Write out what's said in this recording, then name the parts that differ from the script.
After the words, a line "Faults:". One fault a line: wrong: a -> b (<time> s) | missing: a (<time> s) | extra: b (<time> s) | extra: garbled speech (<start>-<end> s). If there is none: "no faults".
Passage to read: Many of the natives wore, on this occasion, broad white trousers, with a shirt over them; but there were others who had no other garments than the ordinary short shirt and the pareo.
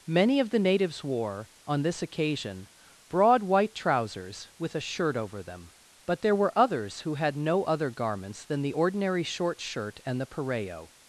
Many of the natives wore, on this occasion, broad white trousers, with a shirt over them; but there were others who had no other garments than the ordinary short shirt and the pareo.
Faults:
no faults